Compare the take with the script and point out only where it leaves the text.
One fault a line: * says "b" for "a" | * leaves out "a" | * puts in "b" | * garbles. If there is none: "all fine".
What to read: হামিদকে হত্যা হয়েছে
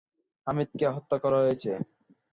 * puts in "করা"